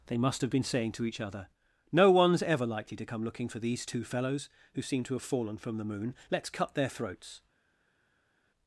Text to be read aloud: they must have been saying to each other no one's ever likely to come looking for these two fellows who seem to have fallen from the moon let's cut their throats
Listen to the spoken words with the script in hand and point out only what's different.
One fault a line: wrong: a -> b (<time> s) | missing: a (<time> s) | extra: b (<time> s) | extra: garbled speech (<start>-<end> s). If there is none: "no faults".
no faults